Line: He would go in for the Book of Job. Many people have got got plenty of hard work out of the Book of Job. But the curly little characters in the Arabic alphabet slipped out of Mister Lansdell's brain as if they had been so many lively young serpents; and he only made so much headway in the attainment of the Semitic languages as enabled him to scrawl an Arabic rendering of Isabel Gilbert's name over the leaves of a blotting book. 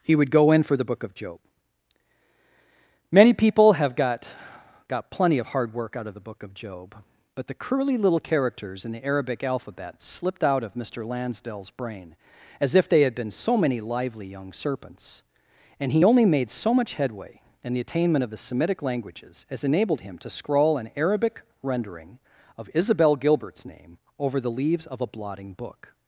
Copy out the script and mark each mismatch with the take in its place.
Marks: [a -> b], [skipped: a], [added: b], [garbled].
He would go in for the Book of Job. Many people have got got plenty of hard work out of the Book of Job. But the curly little characters in the Arabic alphabet slipped out of Mister Lansdell's brain as if they had been so many lively young serpents; and he only made so much headway in the attainment of the Semitic languages as enabled him to scrawl an Arabic rendering of Isabel Gilbert's name over the leaves of a blotting book.